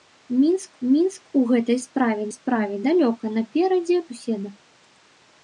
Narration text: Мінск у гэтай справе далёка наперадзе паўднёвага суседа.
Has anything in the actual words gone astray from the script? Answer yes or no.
yes